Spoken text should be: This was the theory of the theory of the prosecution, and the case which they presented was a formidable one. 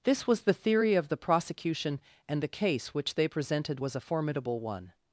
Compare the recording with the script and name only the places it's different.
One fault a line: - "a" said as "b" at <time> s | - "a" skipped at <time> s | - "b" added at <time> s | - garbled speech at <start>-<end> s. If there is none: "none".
- "theory of the" skipped at 1.2 s